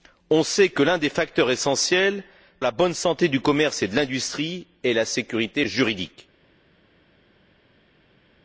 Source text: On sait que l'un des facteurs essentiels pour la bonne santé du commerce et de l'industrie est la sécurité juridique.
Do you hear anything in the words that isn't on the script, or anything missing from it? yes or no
yes